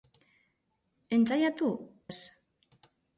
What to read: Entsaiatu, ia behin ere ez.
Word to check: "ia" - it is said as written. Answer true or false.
false